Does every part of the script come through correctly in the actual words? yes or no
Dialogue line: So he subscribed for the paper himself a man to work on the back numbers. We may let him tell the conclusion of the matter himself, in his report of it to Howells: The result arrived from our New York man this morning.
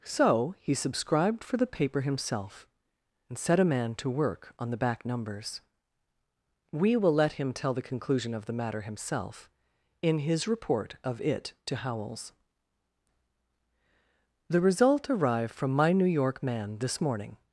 no